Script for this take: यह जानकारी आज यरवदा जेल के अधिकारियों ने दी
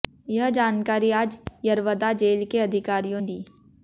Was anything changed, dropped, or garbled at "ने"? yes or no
yes